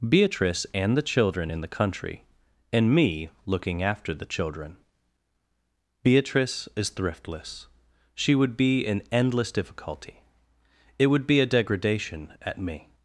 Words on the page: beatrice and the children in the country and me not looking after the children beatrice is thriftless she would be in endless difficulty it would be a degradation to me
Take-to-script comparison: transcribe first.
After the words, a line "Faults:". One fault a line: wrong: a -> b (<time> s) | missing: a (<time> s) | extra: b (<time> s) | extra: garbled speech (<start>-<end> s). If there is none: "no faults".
beatrice and the children in the country and me looking after the children beatrice is thriftless she would be in endless difficulty it would be a degradation at me
Faults:
missing: not (3.3 s)
wrong: to -> at (12.4 s)